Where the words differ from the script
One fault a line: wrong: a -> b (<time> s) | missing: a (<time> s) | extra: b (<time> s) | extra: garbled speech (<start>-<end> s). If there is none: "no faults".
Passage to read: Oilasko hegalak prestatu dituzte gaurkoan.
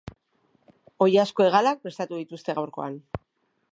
no faults